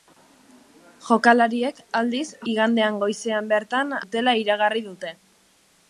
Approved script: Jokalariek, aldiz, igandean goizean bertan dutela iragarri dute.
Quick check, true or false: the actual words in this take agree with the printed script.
true